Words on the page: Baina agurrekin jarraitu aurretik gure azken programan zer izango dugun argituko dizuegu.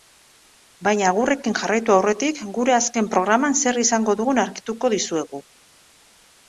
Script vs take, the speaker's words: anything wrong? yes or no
no